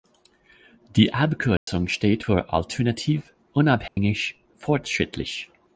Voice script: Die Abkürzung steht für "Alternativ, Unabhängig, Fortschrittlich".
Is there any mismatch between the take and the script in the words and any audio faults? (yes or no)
yes